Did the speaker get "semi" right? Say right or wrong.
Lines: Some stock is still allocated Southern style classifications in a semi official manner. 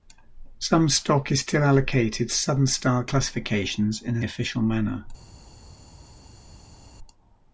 wrong